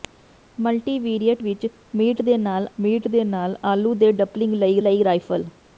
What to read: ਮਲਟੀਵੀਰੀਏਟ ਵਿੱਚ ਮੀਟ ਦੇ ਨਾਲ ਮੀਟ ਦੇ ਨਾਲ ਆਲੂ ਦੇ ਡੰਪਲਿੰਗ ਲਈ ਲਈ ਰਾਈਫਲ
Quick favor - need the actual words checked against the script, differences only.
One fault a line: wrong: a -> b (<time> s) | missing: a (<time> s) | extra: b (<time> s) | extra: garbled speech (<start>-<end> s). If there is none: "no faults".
no faults